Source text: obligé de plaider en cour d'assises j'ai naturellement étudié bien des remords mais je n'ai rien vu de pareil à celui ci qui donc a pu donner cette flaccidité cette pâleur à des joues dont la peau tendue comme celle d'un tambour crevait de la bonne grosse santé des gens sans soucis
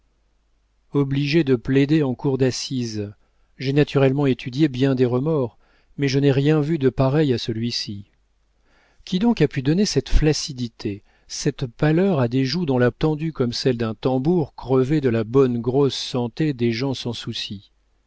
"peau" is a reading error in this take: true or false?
true